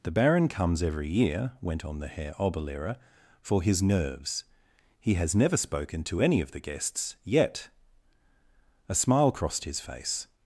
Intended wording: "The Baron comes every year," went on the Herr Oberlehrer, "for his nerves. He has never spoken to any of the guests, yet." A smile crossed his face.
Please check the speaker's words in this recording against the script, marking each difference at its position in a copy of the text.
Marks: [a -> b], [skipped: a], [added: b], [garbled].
"The Baron comes every year," went on the Herr Oberlehrer, "for his nerves. He has never spoken to any of the guests, yet." A smile crossed his face.